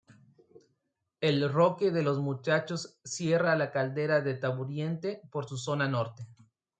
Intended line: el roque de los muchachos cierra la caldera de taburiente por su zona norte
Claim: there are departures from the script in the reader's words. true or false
false